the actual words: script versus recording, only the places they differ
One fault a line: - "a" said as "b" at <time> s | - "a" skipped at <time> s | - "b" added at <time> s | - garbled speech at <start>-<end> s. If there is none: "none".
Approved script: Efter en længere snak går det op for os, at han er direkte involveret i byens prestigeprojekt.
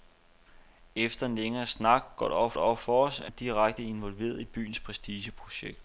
- "det op" added at 2.5 s
- "han" skipped at 3.3 s